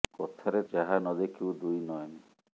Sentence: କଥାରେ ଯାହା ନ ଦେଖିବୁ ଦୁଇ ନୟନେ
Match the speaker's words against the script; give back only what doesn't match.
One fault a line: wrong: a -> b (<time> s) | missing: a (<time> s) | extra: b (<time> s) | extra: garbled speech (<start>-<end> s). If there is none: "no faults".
no faults